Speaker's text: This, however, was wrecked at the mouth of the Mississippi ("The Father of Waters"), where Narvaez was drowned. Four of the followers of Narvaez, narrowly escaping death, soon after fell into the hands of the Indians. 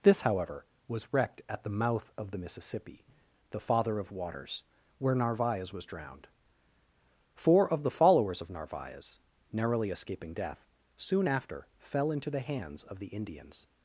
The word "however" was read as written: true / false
true